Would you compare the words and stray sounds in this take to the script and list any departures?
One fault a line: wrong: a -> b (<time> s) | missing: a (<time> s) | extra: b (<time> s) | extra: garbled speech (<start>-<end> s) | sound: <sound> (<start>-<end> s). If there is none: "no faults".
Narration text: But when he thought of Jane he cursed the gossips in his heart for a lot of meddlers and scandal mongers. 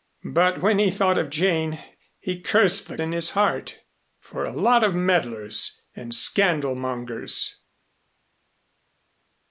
missing: gossips (3.0 s)